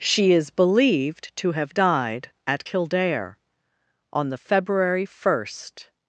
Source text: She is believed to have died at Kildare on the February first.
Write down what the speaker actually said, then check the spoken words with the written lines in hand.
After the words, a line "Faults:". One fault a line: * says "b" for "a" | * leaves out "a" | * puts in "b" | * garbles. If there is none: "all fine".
She is believed to have died at Kildare on the February first.
Faults:
all fine